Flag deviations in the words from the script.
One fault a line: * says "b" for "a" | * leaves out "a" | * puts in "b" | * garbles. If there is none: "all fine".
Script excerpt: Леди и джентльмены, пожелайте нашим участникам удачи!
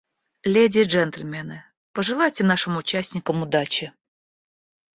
all fine